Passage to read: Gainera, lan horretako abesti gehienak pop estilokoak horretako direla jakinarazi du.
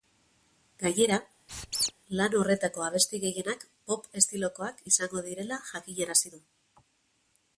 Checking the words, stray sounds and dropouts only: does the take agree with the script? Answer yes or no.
no